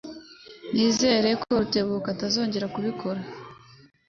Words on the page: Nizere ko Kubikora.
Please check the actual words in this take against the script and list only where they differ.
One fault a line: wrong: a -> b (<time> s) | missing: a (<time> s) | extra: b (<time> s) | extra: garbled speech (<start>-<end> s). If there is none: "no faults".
extra: Rutebuka atazongera (1.6 s)